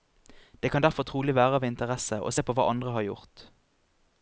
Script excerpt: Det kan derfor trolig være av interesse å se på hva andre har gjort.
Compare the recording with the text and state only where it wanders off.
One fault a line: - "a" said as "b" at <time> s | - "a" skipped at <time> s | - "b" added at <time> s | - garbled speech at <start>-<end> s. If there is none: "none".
none